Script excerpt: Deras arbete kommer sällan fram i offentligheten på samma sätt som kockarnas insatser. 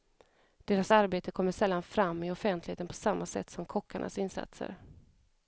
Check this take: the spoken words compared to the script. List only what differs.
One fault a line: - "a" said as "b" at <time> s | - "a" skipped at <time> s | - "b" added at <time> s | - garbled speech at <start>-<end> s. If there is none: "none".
none